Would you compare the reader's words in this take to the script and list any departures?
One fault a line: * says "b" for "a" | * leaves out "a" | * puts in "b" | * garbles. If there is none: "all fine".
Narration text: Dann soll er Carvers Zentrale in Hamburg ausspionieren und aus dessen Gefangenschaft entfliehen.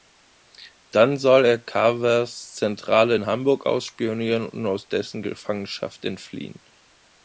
all fine